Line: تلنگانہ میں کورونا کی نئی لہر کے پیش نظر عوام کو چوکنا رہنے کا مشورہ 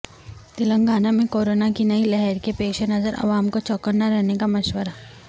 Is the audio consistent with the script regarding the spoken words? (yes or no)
yes